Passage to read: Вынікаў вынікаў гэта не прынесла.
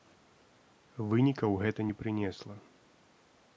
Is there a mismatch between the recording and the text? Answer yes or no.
yes